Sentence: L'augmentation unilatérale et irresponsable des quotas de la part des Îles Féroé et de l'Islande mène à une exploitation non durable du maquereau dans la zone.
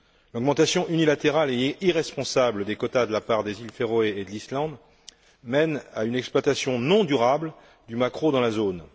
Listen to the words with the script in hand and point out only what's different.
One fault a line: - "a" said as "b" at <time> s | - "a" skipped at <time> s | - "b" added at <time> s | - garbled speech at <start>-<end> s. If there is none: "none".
none